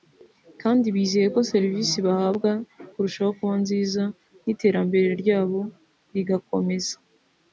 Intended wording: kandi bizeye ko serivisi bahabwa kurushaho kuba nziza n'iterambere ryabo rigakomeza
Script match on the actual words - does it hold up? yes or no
yes